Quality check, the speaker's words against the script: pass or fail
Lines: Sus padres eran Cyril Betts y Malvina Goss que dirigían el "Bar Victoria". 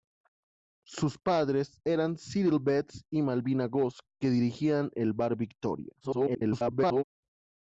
fail